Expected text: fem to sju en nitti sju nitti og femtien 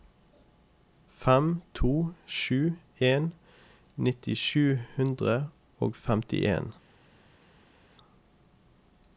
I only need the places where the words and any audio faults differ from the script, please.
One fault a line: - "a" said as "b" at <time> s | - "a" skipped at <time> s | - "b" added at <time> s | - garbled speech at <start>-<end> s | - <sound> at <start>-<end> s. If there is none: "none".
- "nitti" said as "hundre" at 5.0 s